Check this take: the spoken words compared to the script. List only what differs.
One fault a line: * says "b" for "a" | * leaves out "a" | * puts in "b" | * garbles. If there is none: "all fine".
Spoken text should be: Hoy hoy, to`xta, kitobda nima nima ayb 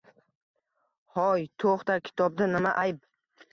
* leaves out "hoy"
* leaves out "nima"